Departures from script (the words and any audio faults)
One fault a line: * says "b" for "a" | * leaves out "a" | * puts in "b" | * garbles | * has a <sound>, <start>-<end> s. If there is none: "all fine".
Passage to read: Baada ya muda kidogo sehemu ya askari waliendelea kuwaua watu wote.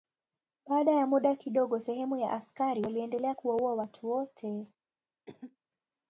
* has a cough, 5.3-5.6 s